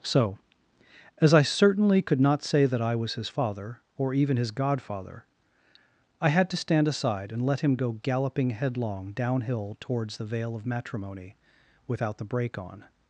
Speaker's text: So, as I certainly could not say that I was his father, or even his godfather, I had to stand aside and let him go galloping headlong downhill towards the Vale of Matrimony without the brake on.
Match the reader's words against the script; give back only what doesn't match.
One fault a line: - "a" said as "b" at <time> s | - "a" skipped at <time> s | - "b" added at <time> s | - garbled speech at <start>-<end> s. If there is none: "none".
none